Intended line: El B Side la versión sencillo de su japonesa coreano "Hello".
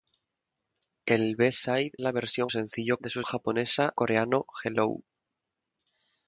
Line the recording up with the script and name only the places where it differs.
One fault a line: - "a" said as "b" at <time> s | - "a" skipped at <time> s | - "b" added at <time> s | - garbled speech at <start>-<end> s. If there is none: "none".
none